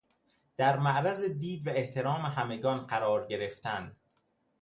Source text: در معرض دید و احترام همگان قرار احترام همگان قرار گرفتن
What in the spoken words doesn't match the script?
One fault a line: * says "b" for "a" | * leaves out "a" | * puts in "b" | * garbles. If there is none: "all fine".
* leaves out "احترام همگان قرار"